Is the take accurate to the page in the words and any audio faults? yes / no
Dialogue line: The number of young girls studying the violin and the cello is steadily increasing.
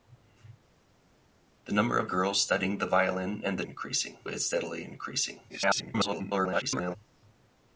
no